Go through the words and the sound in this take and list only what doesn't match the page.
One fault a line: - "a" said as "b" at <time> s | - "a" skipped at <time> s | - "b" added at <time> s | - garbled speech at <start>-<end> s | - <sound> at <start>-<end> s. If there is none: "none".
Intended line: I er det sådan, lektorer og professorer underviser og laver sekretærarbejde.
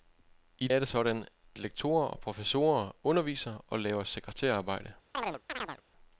- chirp at 5.1-5.8 s